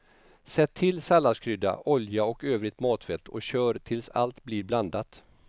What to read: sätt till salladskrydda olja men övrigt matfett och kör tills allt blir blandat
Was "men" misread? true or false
true